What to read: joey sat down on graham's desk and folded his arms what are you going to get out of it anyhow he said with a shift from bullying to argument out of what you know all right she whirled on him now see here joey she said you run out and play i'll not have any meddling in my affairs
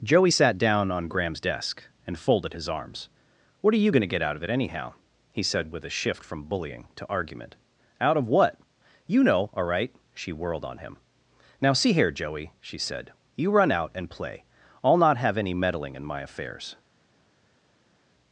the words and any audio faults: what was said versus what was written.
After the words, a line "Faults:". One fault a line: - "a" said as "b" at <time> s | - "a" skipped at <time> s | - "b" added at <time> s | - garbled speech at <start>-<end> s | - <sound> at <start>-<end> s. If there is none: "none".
joey sat down on graham's desk and folded his arms what are you going to get out of it anyhow he said with a shift from bullying to argument out of what you know all right she whirled on him now see here joey she said you run out and play i'll not have any meddling in my affairs
Faults:
none